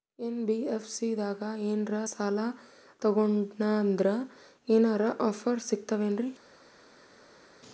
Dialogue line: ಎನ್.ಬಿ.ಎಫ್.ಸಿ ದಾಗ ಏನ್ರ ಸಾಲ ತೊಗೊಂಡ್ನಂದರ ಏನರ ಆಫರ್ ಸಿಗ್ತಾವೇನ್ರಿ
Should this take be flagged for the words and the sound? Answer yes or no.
no